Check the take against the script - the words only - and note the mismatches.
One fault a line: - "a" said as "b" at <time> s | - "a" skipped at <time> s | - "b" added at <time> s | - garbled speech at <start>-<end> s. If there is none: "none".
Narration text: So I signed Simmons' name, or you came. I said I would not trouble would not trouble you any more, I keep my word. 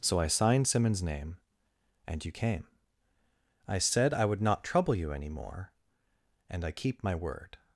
- "or" said as "and" at 2.1 s
- "would not trouble" skipped at 5.0 s
- "and" added at 6.5 s